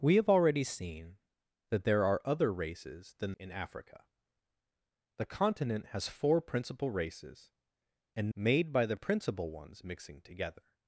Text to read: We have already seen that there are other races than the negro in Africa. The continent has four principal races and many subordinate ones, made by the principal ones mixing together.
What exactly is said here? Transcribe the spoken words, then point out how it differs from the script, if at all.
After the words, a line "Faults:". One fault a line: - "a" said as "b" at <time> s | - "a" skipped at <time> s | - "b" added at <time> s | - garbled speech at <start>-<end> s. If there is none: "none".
We have already seen that there are other races than in Africa. The continent has four principal races and made by the principal ones mixing together.
Faults:
- "the negro" skipped at 3.3 s
- "many subordinate ones" skipped at 8.3 s